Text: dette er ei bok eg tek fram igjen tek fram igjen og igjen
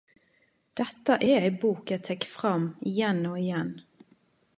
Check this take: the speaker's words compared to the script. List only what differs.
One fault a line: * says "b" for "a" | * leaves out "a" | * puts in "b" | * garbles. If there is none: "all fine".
* leaves out "tek fram igjen"